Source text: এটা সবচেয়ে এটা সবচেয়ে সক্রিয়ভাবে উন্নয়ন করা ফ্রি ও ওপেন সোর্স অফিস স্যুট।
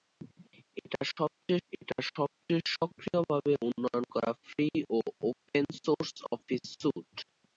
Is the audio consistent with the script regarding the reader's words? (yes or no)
yes